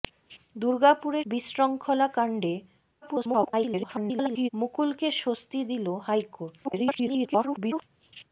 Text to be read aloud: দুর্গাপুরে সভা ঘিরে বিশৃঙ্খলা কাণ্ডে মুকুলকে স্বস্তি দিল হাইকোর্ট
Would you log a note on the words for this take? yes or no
yes